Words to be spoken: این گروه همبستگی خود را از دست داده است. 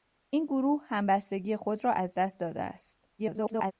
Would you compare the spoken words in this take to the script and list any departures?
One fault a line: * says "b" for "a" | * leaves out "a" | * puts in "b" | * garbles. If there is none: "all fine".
* garbles